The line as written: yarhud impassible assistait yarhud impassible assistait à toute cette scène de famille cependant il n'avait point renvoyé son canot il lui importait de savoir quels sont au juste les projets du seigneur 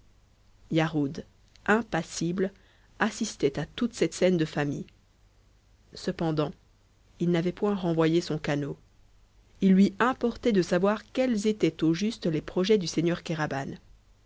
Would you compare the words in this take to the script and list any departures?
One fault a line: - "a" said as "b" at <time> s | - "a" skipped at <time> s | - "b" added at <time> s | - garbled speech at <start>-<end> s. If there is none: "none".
- "yarhud impassible assistait" skipped at 3.6 s
- "sont" said as "étaient" at 11.5 s